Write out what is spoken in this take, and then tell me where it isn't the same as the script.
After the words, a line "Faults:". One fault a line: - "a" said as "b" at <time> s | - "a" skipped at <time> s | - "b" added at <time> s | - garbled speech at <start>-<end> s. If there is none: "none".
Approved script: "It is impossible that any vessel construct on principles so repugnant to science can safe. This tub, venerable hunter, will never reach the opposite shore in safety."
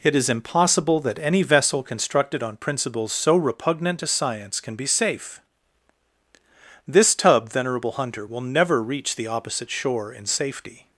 "It is impossible that any vessel constructed on principles so repugnant to science can be safe. This tub, venerable hunter, will never reach the opposite shore in safety."
Faults:
- "construct" said as "constructed" at 1.8 s
- "be" added at 4.8 s